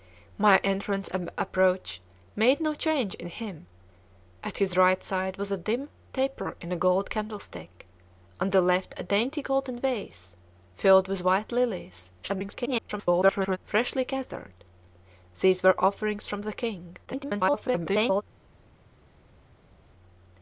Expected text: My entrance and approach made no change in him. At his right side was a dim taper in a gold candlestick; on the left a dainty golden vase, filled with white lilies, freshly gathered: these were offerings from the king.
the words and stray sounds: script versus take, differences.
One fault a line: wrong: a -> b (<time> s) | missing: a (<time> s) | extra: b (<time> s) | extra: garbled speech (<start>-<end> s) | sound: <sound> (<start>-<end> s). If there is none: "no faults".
extra: garbled speech (12.2-13.6 s)
extra: garbled speech (17.1-18.2 s)